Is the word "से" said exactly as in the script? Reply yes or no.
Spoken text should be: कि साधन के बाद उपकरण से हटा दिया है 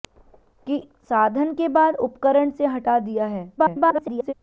yes